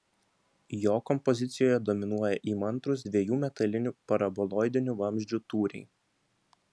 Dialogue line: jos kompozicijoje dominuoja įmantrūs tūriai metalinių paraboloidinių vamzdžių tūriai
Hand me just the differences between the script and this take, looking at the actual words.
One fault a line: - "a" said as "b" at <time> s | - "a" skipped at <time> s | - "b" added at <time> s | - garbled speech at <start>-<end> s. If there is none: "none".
- "jos" said as "jo" at 0.8 s
- "tūriai" said as "dviejų" at 3.1 s